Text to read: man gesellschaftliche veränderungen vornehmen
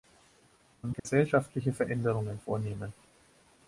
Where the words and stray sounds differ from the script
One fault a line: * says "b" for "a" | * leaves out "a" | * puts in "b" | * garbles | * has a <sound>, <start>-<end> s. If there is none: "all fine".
* has a dropout, 1.0-1.0 s